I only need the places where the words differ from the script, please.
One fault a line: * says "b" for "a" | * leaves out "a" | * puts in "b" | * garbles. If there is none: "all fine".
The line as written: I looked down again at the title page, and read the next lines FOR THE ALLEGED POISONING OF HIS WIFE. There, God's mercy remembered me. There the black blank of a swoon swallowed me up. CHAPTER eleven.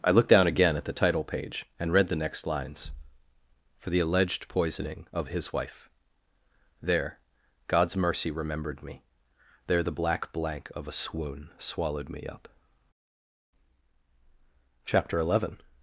all fine